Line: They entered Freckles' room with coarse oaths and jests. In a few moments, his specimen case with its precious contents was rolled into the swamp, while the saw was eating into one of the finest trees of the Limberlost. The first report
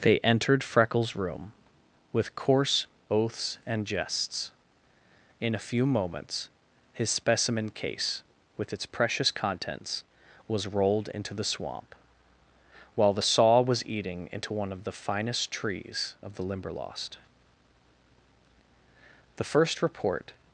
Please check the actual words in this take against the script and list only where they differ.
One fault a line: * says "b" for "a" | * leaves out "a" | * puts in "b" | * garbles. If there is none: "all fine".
all fine